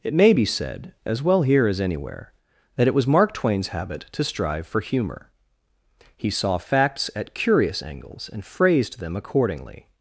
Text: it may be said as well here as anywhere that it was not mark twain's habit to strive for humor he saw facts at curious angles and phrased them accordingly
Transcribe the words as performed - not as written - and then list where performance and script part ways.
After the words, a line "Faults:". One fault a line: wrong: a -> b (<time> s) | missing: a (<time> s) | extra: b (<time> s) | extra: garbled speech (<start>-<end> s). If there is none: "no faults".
it may be said as well here as anywhere that it was mark twain's habit to strive for humor he saw facts at curious angles and phrased them accordingly
Faults:
missing: not (3.1 s)